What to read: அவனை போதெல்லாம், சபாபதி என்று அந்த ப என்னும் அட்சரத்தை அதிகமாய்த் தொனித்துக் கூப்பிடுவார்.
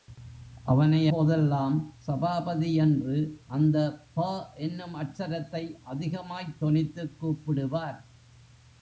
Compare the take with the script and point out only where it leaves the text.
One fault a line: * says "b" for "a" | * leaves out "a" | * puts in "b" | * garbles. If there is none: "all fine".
all fine